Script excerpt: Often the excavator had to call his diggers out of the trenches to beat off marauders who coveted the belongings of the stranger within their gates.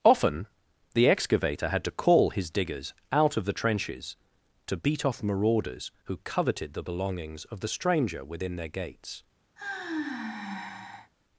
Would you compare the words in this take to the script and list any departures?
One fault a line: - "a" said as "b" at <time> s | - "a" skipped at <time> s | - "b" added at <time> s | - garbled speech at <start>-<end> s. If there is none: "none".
none